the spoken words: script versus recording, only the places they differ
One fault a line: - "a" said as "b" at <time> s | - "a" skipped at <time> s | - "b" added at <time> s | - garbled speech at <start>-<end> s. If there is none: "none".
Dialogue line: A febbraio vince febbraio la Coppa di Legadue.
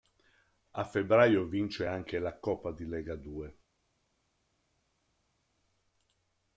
- "febbraio" said as "anche" at 1.8 s